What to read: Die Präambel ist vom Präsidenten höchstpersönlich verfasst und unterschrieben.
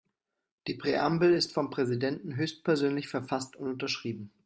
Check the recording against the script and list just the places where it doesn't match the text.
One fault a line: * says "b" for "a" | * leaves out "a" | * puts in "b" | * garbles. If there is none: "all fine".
all fine